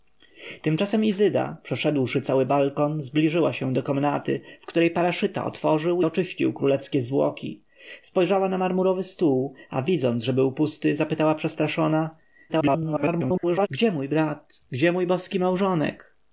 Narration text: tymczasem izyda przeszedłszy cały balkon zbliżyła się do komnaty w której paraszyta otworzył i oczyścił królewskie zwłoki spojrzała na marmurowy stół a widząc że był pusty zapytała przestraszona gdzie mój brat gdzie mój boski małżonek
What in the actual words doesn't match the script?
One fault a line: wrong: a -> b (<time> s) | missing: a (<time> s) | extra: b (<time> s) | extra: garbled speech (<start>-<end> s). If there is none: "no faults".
missing: i (6.0 s)
extra: garbled speech (12.5-13.7 s)